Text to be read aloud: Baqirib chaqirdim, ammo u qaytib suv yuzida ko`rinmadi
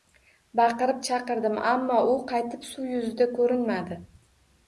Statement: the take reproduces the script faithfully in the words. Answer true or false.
true